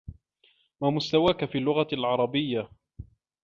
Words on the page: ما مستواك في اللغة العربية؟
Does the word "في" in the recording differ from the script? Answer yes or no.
no